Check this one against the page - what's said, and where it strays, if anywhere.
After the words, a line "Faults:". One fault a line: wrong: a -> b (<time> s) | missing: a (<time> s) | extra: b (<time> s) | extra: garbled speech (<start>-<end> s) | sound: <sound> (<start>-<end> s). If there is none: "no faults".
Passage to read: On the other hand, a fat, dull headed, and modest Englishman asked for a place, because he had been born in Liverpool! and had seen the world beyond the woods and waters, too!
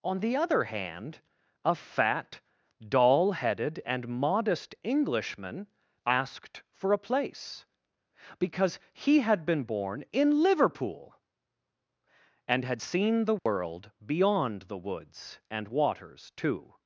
On the other hand, a fat, dull headed, and modest Englishman asked for a place, because he had been born in Liverpool! and had seen the world beyond the woods and waters, too!
Faults:
sound: dropout (13.4-13.5 s)